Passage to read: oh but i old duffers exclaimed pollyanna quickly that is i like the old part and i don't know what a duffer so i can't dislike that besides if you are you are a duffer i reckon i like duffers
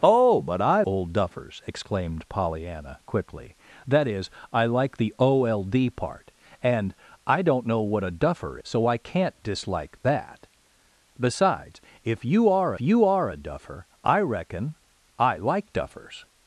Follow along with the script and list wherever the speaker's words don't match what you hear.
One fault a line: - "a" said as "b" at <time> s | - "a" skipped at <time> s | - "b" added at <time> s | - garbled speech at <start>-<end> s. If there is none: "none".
none